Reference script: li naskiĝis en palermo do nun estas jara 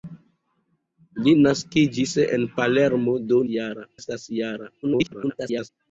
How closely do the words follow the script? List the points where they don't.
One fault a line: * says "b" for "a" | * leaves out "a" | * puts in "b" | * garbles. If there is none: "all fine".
* says "jara" for "nun"
* garbles